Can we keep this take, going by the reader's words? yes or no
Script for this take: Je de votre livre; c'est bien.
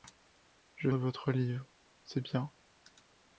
yes